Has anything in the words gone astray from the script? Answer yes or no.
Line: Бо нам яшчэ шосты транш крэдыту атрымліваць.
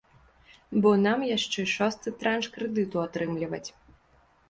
no